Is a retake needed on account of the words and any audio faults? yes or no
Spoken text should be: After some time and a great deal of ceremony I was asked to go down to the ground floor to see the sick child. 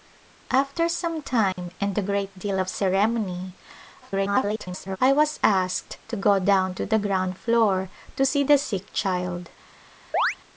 yes